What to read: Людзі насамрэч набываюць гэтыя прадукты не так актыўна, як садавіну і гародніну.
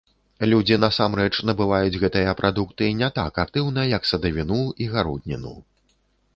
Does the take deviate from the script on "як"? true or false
false